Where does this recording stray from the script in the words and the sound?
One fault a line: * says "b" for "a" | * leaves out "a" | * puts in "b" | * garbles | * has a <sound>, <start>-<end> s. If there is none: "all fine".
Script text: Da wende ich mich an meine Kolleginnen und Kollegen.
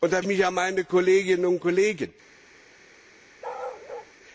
* leaves out "wende"
* has a bark, 3.4-4.1 s